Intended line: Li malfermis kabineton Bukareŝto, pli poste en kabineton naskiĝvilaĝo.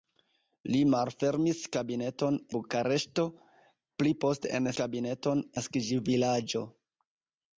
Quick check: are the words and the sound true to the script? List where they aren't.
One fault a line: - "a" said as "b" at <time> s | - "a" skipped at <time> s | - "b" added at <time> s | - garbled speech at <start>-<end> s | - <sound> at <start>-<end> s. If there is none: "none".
none